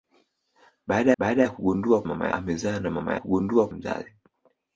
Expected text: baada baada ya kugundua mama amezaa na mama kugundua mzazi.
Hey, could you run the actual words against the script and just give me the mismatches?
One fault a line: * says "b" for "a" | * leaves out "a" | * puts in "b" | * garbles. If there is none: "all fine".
all fine